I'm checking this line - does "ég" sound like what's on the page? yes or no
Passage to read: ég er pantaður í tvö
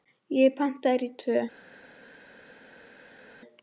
yes